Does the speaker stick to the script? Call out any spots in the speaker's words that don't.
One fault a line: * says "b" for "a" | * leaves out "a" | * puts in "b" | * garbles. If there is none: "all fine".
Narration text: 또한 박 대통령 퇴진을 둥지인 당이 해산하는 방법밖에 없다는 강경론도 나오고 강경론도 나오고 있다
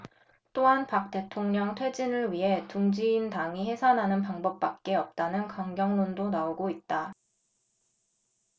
* puts in "위해"
* leaves out "강경론도 나오고"